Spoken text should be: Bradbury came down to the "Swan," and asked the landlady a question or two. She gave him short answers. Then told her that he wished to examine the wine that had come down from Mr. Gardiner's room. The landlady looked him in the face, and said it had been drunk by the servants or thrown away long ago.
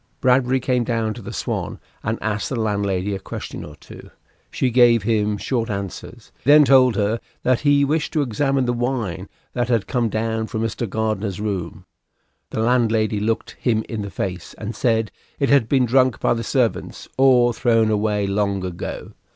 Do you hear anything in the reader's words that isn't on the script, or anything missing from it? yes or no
no